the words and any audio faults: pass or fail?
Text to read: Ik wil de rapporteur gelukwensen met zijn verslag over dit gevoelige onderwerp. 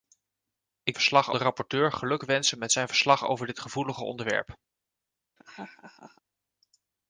fail